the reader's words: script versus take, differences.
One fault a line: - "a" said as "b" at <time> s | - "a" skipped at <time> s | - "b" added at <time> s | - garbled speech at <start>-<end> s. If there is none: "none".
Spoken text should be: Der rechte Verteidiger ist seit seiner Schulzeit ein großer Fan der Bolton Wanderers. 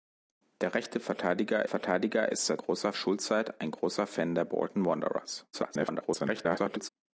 - "Verteidiger" added at 1.6 s
- "seiner" said as "großer" at 2.6 s
- garbled speech at 5.5-6.9 s